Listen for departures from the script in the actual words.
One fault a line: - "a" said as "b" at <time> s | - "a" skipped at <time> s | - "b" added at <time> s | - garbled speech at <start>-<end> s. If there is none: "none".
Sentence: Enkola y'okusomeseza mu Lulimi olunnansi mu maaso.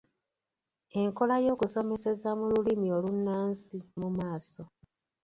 none